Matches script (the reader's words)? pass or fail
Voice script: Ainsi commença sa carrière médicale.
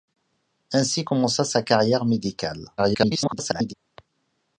fail